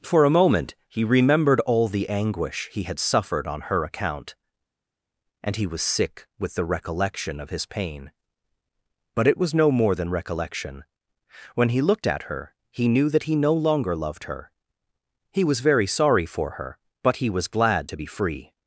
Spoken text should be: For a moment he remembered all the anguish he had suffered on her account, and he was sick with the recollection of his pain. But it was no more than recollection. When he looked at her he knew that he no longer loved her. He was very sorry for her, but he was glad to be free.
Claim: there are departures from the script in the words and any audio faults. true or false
false